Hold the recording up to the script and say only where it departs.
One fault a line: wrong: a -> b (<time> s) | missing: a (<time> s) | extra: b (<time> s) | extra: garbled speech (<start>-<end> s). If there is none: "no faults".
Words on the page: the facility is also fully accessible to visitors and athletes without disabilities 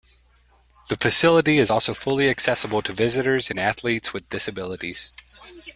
wrong: without -> with (4.1 s)